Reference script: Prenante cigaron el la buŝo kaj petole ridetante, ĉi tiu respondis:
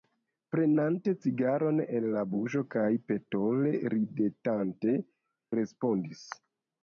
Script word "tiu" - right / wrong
wrong